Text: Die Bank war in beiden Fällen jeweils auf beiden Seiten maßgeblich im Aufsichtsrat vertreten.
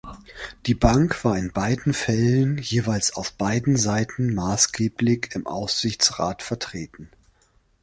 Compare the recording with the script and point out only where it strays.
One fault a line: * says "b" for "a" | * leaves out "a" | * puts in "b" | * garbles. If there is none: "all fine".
all fine